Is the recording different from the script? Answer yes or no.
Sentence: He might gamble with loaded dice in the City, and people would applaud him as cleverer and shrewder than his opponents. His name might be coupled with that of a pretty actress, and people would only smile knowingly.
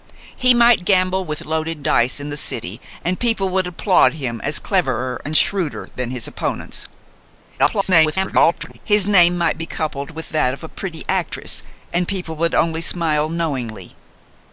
yes